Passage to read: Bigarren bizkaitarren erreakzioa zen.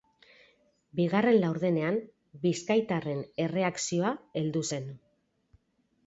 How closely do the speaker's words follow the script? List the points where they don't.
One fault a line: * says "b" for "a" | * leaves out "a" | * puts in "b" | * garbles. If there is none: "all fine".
* puts in "laurdenean"
* puts in "heldu"